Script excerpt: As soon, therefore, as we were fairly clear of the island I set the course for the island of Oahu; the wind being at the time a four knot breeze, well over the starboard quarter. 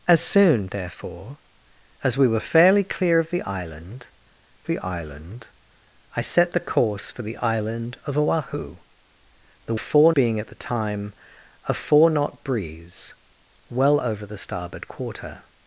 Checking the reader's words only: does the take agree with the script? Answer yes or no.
no